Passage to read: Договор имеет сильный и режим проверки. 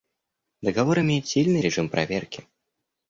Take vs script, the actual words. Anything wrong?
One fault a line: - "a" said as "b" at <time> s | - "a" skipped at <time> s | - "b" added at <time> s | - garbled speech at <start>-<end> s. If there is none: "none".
none